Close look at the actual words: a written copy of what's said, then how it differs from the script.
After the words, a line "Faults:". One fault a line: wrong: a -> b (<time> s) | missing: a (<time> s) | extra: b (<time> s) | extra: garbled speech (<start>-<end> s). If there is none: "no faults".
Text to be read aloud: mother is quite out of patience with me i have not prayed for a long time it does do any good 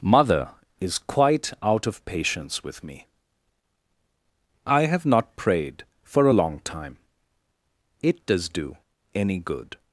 mother is quite out of patience with me i have not prayed for a long time it does do any good
Faults:
no faults